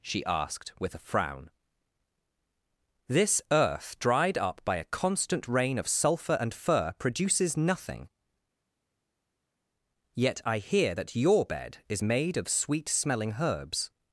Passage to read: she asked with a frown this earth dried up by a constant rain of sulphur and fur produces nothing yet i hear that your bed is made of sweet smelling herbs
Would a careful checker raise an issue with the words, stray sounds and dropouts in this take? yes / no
no